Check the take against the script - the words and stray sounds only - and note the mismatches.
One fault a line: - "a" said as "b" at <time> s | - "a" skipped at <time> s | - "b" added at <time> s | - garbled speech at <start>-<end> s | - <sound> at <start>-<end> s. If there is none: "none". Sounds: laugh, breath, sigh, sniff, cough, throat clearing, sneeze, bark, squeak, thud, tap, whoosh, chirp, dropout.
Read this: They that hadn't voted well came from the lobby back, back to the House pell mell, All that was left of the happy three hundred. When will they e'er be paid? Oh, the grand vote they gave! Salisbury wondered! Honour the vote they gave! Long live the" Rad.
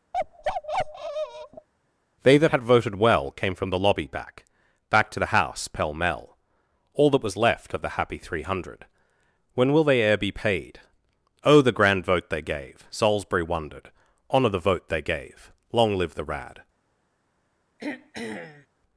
- bark at 0.1-1.7 s
- "hadn't" said as "had" at 2.5 s
- throat clearing at 17.8-18.7 s